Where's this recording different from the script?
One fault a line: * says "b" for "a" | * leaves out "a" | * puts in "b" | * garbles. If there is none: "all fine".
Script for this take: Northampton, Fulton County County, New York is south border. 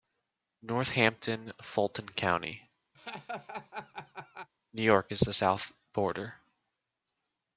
* leaves out "County"
* puts in "the"